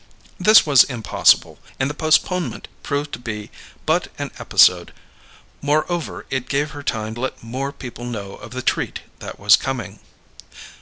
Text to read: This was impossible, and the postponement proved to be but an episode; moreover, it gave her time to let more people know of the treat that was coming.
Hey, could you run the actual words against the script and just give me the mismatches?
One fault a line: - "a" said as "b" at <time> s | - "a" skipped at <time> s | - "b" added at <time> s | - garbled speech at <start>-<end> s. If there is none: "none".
- "to" skipped at 7.2 s